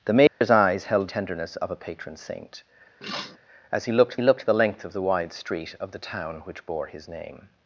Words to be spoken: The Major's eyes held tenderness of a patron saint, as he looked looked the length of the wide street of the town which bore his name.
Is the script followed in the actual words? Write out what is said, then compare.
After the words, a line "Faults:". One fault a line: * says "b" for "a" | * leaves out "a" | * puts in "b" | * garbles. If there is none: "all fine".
The Major's eyes held tenderness of a patron saint, as he looked looked the length of the wide street of the town which bore his name.
Faults:
all fine